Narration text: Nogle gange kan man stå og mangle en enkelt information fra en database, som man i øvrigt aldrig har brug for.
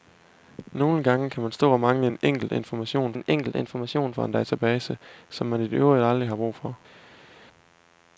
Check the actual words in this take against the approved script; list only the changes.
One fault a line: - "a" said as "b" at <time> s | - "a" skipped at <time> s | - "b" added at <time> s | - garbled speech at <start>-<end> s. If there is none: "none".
- "en enkelt information" added at 3.1 s